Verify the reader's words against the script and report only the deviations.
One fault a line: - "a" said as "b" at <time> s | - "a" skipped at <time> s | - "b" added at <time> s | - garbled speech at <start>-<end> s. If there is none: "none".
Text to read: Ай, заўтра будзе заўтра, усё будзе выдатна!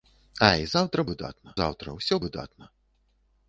- "будзе" said as "выдатна" at 1.1 s
- "будзе" skipped at 2.2 s